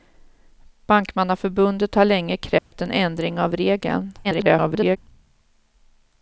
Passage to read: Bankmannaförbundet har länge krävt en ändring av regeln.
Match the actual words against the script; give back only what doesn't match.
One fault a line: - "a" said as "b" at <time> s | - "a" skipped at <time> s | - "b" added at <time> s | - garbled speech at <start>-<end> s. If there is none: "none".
- garbled speech at 4.2-5.0 s